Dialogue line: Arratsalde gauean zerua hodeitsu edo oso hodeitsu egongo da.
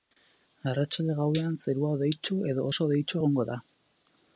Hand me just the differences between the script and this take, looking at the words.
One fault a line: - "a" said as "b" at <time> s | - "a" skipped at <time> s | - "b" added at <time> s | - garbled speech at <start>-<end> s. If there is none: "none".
none